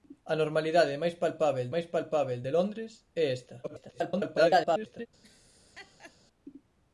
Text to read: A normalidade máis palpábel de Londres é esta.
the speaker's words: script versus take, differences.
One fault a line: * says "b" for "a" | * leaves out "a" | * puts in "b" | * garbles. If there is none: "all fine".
* puts in "máis palpábel"
* garbles